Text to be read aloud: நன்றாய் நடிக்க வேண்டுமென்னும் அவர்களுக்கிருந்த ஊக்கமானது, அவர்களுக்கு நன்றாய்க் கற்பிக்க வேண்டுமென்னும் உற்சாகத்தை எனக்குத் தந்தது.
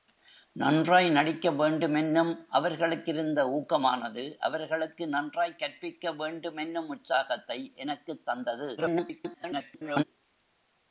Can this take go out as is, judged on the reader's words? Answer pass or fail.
fail